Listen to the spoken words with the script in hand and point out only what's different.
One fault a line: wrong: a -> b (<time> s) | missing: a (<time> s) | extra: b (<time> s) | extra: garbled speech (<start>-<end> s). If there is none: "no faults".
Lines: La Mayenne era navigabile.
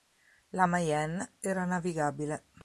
no faults